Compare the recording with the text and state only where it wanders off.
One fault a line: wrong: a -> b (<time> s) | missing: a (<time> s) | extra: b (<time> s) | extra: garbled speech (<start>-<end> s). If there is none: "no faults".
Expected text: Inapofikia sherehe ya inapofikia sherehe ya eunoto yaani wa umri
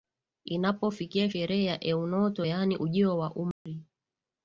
missing: inapofikia sherehe ya (1.8 s)
extra: ujio (2.7 s)